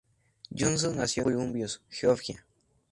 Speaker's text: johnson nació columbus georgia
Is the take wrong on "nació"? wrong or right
right